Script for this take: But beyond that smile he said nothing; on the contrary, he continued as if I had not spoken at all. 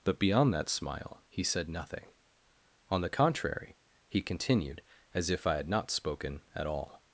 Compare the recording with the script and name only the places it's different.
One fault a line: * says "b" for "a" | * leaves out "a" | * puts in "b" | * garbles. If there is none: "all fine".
all fine